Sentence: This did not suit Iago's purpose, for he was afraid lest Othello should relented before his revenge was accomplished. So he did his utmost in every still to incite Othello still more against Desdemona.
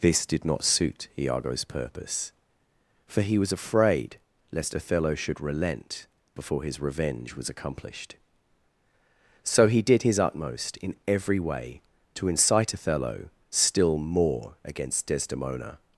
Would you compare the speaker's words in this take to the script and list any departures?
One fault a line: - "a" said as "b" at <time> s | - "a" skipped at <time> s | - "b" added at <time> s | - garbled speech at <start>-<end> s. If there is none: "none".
- "relented" said as "relent" at 5.4 s
- "still" said as "way" at 11.4 s